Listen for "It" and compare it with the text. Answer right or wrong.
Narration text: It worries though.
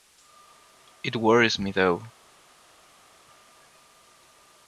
right